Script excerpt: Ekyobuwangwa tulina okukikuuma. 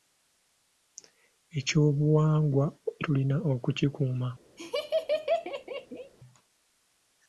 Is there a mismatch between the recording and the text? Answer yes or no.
no